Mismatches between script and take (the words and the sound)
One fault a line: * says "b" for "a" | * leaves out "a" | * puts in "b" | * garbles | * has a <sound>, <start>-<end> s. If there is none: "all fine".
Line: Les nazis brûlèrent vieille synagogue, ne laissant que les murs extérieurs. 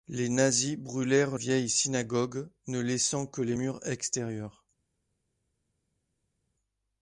all fine